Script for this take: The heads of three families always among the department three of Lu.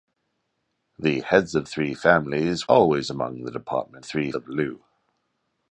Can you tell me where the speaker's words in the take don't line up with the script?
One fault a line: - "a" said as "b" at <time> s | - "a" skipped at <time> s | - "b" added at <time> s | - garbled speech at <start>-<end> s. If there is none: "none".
none